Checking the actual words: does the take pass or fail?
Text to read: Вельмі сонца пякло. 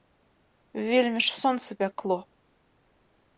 fail